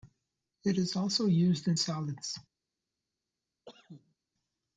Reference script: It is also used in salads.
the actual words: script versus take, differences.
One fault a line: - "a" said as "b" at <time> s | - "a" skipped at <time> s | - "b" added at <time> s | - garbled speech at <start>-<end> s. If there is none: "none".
none